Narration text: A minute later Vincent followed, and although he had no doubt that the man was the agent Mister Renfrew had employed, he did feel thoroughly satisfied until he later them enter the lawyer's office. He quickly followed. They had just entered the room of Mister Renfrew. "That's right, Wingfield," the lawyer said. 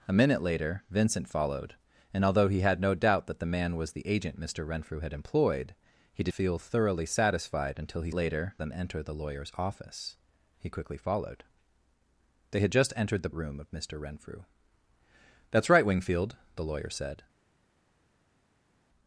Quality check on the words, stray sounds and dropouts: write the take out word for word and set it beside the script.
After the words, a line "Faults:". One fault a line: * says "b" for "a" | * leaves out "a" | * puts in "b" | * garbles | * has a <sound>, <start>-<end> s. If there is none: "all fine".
A minute later Vincent followed, and although he had no doubt that the man was the agent Mister Renfrew had employed, he did feel thoroughly satisfied until he later them enter the lawyer's office. He quickly followed. They had just entered the room of Mister Renfrew. "That's right, Wingfield," the lawyer said.
Faults:
all fine